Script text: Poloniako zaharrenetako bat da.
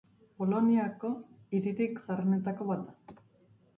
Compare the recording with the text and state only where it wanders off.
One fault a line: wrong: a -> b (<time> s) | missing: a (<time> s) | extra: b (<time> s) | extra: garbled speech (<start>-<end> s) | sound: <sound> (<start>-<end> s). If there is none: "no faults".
extra: hiririk (1.6 s)